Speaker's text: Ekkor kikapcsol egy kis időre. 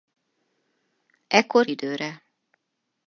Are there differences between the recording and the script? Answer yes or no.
yes